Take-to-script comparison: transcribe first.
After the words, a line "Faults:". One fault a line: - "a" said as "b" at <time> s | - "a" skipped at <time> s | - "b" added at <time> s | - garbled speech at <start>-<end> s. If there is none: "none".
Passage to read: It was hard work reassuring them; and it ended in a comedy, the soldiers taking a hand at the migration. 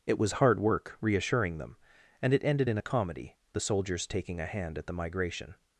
It was hard work reassuring them; and it ended in a comedy, the soldiers taking a hand at the migration.
Faults:
none